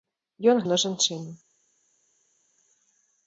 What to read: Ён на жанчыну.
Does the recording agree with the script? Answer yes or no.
yes